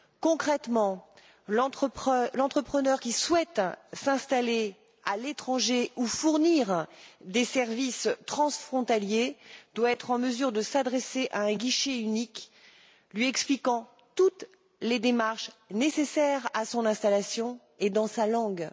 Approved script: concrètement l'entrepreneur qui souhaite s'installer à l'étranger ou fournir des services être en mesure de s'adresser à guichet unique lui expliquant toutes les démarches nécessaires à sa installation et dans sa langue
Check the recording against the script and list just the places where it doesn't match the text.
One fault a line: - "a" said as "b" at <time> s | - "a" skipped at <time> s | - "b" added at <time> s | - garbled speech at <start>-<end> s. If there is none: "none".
- "transfrontaliers doit" added at 8.3 s
- "un" added at 11.4 s
- "sa" said as "son" at 16.6 s